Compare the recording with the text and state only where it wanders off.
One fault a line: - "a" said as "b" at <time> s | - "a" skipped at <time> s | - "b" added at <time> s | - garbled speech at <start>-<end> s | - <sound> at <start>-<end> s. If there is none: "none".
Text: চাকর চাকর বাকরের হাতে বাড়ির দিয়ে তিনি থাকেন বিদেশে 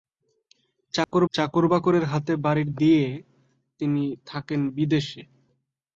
- dropout at 1.0-1.1 s